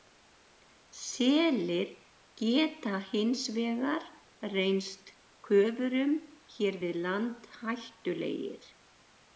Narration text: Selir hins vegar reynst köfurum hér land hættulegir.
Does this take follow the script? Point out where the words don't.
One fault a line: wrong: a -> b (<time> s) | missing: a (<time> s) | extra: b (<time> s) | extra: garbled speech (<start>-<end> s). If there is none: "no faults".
extra: geta (2.4 s)
extra: við (6.9 s)